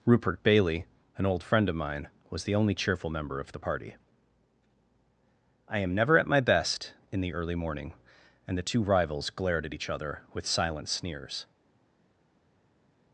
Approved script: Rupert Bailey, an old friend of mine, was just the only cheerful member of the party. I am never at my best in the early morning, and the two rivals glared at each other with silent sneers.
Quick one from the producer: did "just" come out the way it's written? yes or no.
no